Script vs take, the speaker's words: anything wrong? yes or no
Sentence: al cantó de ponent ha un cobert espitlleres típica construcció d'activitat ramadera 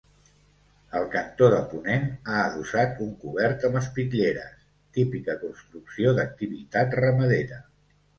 yes